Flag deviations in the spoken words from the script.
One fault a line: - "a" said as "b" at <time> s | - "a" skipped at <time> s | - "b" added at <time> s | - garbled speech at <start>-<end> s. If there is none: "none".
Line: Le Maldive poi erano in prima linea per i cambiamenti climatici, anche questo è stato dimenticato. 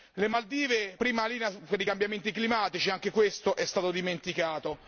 - "poi erano in" skipped at 1.0 s